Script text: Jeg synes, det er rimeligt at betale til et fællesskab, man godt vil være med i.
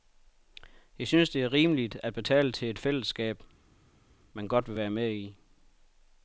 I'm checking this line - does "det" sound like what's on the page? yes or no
yes